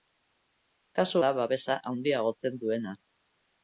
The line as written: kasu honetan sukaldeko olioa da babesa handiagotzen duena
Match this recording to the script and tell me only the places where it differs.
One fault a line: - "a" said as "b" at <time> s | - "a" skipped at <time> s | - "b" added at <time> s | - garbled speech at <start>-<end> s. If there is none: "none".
- "honetan sukaldeko olioa" skipped at 1.2 s